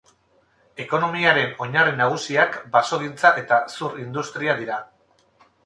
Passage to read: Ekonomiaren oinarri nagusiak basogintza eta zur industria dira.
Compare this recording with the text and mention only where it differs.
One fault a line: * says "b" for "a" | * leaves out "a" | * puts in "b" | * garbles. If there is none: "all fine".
all fine